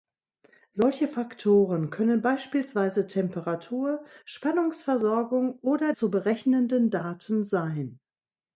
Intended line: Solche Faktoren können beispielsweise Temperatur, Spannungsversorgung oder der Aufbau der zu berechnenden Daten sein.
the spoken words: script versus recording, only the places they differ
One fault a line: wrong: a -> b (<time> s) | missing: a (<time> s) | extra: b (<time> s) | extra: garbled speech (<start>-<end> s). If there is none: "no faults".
missing: der Aufbau der (5.9 s)